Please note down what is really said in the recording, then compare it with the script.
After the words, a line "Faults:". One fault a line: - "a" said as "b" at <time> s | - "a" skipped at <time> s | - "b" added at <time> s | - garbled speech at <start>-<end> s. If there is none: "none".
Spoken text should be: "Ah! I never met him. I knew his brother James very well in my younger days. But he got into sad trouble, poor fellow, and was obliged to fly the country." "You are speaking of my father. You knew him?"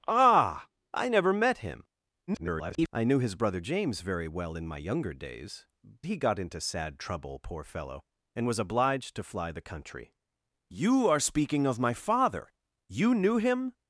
"Ah! I never met him. [garbled] I knew his brother James very well in my younger days. He got into sad trouble, poor fellow, and was obliged to fly the country." "You are speaking of my father. You knew him?"
Faults:
- garbled speech at 2.3-2.9 s
- "But" skipped at 5.7 s